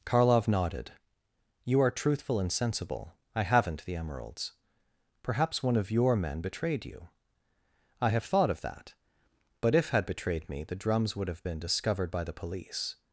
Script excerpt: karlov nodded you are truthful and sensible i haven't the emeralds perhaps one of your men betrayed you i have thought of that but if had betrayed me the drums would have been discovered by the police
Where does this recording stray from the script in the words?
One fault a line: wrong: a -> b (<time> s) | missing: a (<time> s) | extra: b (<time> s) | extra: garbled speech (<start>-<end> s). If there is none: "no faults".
no faults